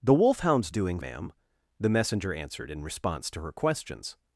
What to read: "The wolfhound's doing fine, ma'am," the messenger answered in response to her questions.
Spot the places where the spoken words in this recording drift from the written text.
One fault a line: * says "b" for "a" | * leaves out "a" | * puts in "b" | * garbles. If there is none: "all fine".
* leaves out "fine"